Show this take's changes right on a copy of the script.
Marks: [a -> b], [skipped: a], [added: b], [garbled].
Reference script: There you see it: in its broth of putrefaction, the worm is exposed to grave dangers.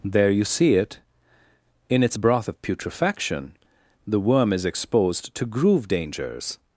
There you see it: in its broth of putrefaction, the worm is exposed to [grave -> groove] dangers.